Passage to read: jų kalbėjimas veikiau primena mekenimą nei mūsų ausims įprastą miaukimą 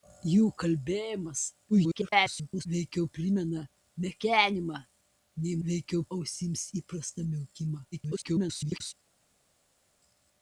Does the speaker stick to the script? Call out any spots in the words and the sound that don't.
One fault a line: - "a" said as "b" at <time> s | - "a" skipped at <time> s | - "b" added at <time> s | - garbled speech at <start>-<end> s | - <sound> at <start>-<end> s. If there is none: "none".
- garbled speech at 1.7-2.7 s
- "mūsų" said as "veikiau" at 5.7 s
- garbled speech at 7.9-8.9 s